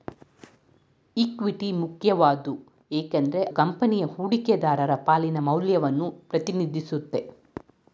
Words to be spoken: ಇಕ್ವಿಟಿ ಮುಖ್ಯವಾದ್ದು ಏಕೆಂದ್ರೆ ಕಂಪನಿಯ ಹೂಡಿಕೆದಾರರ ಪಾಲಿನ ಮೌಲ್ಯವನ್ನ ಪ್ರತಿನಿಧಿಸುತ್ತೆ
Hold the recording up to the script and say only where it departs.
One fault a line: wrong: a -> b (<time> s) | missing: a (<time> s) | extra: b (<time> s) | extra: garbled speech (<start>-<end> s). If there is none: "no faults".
no faults